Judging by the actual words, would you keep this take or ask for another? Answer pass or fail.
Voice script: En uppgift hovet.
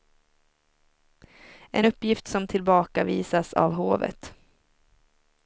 fail